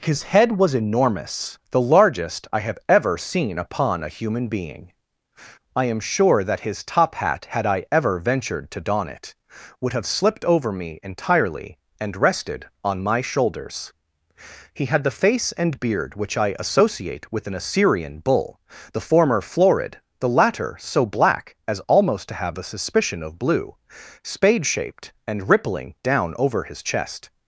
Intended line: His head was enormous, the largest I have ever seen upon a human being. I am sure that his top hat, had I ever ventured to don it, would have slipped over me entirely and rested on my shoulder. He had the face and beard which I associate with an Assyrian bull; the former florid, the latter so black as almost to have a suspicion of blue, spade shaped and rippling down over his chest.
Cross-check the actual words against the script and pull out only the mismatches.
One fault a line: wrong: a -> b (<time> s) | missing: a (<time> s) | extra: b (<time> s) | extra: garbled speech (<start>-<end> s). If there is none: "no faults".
wrong: shoulder -> shoulders (13.2 s)